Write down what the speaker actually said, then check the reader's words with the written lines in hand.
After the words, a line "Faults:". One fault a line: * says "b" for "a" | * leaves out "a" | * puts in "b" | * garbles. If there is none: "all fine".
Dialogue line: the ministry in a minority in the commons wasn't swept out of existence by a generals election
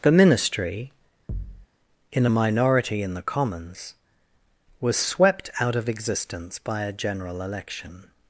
the ministry in a minority in the commons was swept out of existence by a general election
Faults:
* says "was" for "wasn't"
* says "general" for "generals"